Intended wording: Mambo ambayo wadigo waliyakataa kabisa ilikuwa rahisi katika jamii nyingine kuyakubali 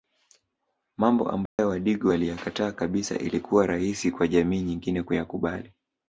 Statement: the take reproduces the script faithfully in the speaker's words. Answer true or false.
false